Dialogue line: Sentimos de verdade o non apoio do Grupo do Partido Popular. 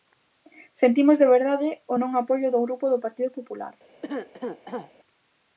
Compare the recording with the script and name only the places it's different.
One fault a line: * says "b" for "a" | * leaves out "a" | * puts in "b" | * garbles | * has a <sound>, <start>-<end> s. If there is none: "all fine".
* has a cough, 4.0-4.9 s